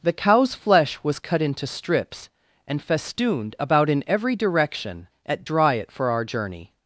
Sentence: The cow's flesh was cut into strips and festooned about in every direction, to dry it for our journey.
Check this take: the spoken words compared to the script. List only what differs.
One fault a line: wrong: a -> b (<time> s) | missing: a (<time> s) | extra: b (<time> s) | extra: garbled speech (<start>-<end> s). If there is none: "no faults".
wrong: to -> at (5.2 s)